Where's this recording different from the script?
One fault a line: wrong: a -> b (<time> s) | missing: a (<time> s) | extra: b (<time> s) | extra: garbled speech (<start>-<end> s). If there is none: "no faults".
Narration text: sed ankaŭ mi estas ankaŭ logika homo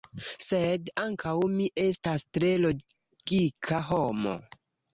wrong: ankaŭ -> tre (2.4 s)